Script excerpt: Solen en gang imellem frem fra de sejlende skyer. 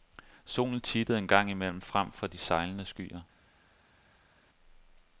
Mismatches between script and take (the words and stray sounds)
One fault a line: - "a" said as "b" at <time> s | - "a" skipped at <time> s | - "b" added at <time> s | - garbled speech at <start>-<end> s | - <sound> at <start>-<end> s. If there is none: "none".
- "tittede" added at 0.8 s